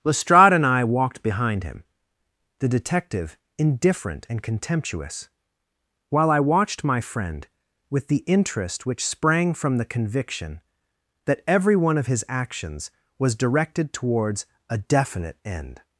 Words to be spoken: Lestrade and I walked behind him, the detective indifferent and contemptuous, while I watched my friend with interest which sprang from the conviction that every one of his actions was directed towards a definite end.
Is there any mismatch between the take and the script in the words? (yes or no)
yes